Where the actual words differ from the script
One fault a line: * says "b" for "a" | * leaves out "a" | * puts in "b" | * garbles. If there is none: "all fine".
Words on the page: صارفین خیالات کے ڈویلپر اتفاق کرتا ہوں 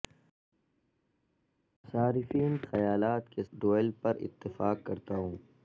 all fine